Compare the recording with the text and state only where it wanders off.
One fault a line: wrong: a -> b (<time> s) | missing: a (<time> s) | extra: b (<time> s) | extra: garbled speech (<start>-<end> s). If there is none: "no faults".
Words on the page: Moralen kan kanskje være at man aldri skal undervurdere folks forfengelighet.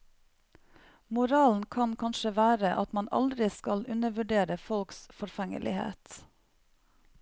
no faults